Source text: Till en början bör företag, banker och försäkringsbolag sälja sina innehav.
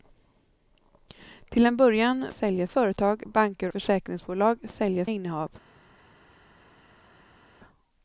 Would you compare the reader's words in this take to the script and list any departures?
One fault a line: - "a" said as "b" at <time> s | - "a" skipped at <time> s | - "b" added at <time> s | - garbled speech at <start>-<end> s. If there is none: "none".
- "bör" said as "sälja" at 2.3 s
- "och" skipped at 3.7 s
- "sina" skipped at 5.1 s